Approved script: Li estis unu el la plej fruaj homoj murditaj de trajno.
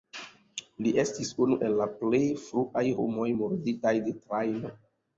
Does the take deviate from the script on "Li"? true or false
false